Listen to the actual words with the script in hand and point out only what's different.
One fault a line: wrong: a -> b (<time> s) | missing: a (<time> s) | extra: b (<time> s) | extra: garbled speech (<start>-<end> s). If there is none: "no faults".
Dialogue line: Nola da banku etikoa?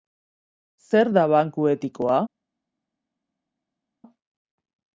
wrong: Nola -> Zer (0.8 s)